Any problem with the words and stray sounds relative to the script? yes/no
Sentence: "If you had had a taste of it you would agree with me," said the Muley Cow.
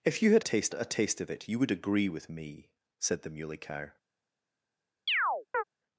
yes